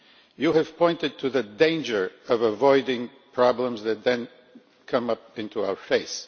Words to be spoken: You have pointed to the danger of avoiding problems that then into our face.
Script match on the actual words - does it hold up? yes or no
no